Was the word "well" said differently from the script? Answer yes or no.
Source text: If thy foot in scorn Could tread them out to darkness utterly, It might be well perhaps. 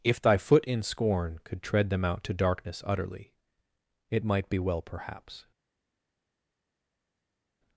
no